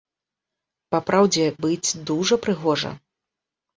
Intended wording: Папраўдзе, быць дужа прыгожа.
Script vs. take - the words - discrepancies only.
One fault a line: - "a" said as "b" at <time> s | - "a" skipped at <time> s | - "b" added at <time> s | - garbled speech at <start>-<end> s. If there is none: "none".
none